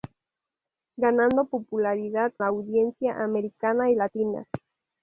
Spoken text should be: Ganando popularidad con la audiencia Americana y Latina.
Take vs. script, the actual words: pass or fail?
fail